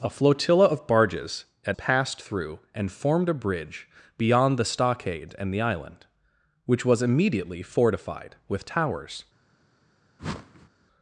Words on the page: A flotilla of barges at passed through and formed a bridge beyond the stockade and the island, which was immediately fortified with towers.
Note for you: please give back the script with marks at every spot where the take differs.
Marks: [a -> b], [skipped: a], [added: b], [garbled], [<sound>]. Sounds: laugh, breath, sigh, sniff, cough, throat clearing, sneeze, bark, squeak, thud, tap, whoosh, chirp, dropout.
A flotilla of barges at passed through and formed a bridge beyond the stockade and the island, which was immediately fortified with towers. [whoosh]